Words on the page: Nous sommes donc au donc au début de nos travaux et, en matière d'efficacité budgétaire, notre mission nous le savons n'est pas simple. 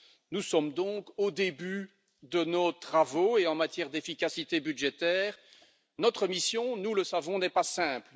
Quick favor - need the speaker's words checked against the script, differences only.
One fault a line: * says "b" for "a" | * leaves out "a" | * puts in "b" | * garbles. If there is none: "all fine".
* leaves out "donc au"